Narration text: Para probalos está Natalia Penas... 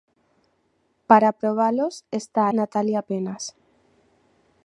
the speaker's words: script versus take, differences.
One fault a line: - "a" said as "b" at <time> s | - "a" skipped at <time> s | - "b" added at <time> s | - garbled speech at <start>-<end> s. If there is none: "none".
none